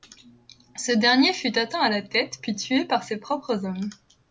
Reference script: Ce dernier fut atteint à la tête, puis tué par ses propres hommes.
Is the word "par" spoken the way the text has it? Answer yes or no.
yes